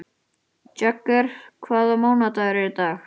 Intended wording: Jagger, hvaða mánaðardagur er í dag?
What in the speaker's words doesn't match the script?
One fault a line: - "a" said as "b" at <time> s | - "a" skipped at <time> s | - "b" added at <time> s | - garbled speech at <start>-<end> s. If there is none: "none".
none